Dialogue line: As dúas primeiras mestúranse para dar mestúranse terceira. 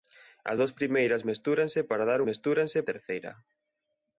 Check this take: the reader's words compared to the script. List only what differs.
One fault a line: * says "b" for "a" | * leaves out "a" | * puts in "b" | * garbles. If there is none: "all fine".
all fine